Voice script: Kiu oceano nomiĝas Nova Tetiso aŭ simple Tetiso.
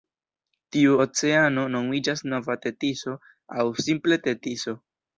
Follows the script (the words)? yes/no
no